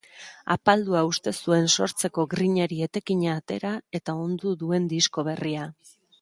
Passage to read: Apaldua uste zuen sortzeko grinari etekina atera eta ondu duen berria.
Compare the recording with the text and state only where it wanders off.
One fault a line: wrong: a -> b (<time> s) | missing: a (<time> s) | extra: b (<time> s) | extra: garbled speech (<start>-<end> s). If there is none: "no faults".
extra: disko (5.0 s)